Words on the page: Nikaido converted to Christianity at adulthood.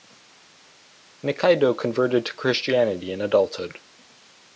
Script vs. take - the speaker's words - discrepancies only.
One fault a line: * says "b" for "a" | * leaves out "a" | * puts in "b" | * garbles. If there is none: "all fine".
* says "in" for "at"